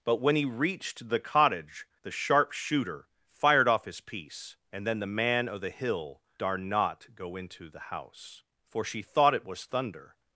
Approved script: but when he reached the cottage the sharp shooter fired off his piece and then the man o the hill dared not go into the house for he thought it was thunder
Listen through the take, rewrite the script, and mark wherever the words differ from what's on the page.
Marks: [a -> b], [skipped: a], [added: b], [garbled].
but when he reached the cottage the sharp shooter fired off his piece and then the man o the hill [dared -> dar] not go into the house for [he -> she] thought it was thunder